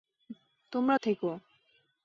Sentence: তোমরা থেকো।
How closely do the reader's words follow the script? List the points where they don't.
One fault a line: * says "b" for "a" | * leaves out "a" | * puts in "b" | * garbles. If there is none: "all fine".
all fine